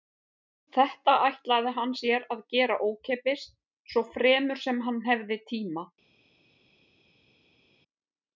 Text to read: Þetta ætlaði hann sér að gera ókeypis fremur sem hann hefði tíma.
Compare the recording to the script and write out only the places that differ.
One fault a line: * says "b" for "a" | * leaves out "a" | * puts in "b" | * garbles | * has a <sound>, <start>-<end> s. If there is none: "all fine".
* puts in "svo"